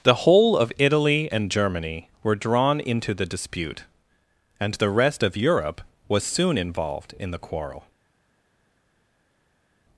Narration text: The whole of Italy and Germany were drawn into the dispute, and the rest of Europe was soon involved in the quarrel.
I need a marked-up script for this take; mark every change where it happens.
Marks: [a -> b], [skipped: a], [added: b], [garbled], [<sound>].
The whole of Italy and Germany were drawn into the dispute, and the rest of Europe was soon involved in the quarrel.